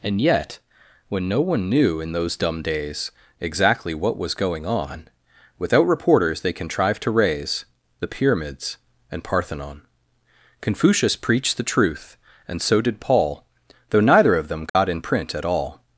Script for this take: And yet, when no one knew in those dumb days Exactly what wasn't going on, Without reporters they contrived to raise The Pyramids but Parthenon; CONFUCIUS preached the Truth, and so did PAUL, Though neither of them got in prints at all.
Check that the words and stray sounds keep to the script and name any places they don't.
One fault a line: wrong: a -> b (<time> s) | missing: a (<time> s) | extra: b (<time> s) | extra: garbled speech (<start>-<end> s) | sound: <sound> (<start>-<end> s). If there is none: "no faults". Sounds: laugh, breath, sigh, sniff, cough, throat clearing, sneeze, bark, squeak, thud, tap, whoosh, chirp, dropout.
wrong: wasn't -> was (4.2 s)
wrong: but -> and (9.1 s)
sound: dropout (14.7-14.8 s)
wrong: prints -> print (15.0 s)